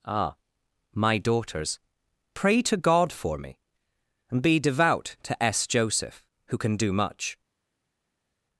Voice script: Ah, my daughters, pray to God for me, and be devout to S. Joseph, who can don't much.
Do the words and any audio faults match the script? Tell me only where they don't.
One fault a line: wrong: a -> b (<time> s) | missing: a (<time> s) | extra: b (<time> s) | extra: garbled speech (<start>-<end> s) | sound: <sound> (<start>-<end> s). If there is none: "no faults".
wrong: don't -> do (6.8 s)